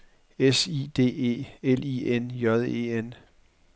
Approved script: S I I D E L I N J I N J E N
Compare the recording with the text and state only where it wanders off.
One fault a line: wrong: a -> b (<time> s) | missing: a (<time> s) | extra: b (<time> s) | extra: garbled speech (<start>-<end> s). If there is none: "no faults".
missing: I (0.9 s)
missing: I N J (2.6 s)